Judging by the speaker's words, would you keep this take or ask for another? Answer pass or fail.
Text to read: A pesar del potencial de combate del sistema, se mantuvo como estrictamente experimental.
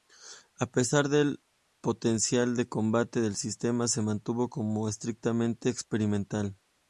pass